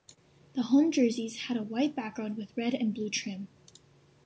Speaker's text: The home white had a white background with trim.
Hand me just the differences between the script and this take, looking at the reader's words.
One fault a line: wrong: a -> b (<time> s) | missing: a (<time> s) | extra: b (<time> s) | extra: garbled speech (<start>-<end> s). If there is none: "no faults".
wrong: white -> jerseys (0.9 s)
extra: red and blue (2.5 s)